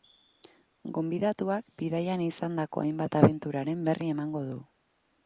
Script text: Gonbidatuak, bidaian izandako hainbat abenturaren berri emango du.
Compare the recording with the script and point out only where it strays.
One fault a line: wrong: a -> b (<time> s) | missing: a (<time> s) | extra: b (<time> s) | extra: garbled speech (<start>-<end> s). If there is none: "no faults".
no faults